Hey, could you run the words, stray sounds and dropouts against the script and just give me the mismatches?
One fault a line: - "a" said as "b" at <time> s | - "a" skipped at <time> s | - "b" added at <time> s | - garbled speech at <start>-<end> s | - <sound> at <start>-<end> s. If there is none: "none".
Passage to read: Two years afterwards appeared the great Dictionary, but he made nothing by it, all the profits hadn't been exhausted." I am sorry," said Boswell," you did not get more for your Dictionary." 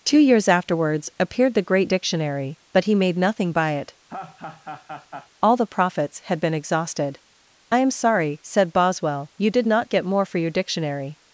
- laugh at 4.1-5.3 s
- "hadn't" said as "had" at 6.2 s